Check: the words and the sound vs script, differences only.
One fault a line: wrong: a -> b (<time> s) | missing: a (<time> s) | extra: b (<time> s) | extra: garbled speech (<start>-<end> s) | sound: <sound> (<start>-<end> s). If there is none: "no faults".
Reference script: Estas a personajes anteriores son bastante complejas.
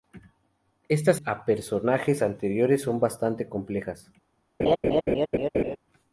sound: laugh (4.6-5.8 s)